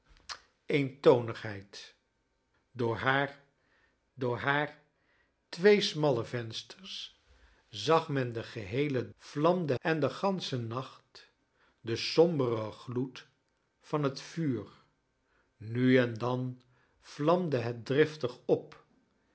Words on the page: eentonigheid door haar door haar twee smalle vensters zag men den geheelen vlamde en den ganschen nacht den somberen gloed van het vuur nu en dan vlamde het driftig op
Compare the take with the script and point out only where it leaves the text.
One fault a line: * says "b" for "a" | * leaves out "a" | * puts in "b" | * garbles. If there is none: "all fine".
all fine